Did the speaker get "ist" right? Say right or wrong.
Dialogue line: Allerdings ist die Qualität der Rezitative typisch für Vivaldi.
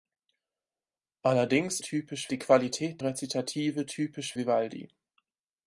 wrong